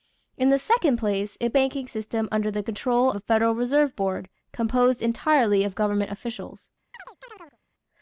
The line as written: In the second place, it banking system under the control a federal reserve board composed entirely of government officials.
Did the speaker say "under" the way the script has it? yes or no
yes